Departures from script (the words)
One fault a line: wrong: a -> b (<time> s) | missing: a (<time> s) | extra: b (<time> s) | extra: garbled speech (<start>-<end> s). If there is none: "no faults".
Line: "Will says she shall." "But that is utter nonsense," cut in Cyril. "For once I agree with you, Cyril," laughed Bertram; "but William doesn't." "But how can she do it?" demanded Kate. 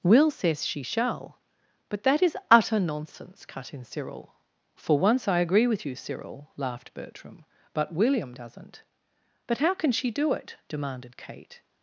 no faults